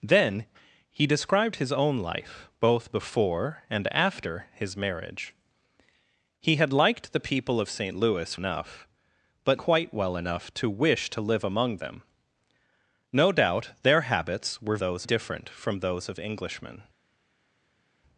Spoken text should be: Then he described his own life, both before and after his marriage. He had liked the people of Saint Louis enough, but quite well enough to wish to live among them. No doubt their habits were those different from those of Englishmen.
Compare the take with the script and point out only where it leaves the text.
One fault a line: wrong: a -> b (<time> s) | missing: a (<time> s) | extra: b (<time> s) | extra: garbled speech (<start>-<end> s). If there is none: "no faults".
no faults